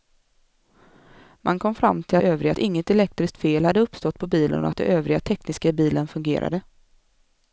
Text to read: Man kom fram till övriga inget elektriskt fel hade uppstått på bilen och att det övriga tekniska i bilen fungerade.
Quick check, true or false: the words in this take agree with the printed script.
true